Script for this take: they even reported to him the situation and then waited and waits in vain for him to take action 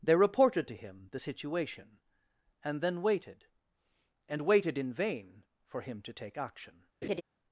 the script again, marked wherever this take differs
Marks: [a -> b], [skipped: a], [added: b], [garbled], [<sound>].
they [skipped: even] reported to him the situation and then waited and [waits -> waited] in vain for him to take action [laugh]